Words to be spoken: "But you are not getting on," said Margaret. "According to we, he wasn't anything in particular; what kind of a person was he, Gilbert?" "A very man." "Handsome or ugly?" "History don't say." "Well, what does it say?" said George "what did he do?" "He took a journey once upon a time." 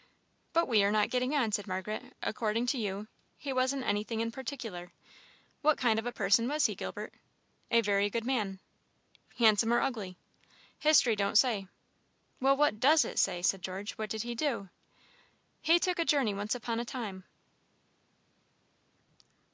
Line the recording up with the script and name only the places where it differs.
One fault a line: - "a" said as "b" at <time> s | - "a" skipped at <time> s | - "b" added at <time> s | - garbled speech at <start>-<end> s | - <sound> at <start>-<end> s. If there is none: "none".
- "you" said as "we" at 0.7 s
- "we" said as "you" at 2.8 s
- "good" added at 8.1 s